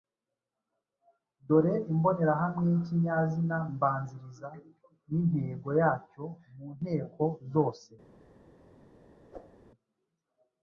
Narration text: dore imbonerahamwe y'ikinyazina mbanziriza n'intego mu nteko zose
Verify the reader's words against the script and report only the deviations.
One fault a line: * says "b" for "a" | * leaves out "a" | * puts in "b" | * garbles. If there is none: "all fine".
* puts in "yacyo"